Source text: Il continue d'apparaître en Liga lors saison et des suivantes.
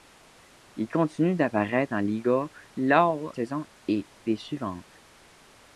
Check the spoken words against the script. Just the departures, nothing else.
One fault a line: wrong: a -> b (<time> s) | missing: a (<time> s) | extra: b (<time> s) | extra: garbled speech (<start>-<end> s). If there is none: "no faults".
no faults